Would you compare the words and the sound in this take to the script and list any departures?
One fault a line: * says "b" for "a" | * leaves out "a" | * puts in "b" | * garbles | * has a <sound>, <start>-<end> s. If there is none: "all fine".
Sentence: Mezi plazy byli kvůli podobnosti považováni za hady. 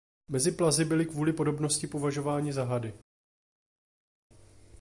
all fine